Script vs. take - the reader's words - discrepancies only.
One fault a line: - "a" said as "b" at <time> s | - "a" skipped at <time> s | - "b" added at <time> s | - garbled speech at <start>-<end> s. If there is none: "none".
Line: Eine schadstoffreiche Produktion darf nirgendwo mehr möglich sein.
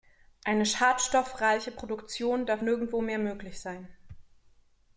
none